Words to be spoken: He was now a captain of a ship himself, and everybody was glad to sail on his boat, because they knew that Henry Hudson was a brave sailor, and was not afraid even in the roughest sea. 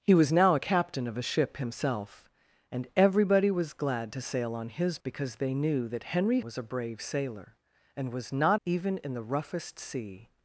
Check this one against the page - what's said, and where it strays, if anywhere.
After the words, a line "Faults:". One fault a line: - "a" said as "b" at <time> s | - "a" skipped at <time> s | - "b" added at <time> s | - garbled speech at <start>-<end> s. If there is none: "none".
He was now a captain of a ship himself, and everybody was glad to sail on his because they knew that Henry Was a brave sailor, and was not even in the roughest sea.
Faults:
- "boat" skipped at 5.0 s
- "Hudson" skipped at 6.4 s
- "afraid" skipped at 8.6 s